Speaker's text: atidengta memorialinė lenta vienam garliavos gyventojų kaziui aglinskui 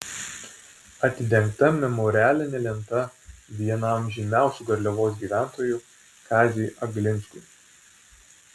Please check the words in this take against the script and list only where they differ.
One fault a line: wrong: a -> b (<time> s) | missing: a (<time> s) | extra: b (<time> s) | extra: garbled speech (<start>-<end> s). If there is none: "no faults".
extra: žymiausių (4.2 s)